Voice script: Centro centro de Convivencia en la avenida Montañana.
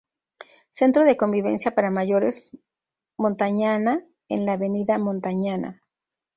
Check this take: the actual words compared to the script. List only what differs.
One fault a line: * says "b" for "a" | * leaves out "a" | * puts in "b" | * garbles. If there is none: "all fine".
* leaves out "centro"
* puts in "para Mayores Montañana"